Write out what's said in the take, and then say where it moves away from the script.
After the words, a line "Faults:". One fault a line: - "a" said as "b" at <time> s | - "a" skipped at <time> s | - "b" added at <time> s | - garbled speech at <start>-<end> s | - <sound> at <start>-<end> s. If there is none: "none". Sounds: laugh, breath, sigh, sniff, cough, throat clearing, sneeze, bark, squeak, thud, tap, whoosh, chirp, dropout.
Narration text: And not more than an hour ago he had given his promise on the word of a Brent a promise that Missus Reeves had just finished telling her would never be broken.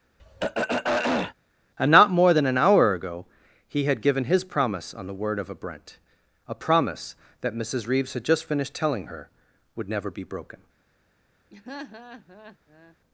And not more than an hour ago he had given his promise on the word of a Brent a promise that Missus Reeves had just finished telling her would never be broken.
Faults:
- throat clearing at 0.2-1.3 s
- laugh at 11.5-13.0 s